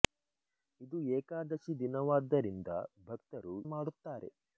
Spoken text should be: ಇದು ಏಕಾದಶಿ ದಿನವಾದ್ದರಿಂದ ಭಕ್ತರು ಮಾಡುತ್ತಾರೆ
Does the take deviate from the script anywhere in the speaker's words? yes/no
no